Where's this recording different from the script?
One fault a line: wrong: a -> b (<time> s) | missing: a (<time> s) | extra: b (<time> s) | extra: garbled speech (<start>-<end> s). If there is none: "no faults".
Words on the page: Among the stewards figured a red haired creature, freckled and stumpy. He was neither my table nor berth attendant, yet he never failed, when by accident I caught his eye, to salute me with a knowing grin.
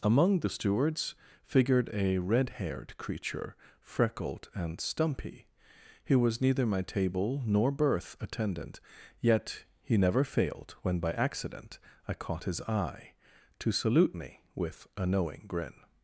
no faults